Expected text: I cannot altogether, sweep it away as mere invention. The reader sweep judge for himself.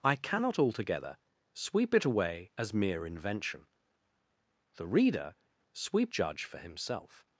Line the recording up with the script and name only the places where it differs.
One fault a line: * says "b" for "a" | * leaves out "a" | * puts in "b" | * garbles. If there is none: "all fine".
all fine